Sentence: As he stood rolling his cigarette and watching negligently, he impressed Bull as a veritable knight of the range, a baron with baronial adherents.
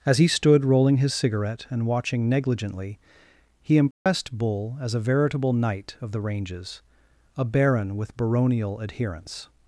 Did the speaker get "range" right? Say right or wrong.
wrong